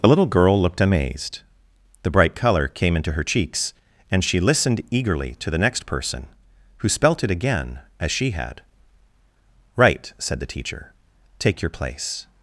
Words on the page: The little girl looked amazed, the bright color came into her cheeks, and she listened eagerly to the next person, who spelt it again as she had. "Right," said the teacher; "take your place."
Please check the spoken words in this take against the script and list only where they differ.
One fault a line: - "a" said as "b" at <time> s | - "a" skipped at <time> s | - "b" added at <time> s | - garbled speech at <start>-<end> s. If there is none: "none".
none